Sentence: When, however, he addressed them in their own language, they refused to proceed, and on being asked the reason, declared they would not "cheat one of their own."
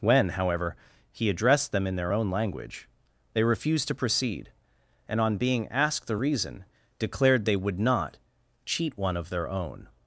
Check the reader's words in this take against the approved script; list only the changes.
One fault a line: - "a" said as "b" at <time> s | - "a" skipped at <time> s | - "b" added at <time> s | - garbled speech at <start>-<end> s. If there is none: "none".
none